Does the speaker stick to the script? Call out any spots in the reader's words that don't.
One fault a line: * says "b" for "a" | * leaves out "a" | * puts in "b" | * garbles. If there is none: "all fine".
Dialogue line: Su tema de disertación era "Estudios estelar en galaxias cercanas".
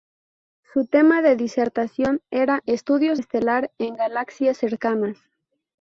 all fine